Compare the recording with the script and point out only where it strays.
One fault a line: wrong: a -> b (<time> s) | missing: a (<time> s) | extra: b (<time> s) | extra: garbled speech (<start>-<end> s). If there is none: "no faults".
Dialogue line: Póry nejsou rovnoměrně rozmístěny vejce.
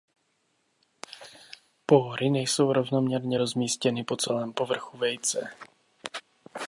extra: po celém povrchu (4.0 s)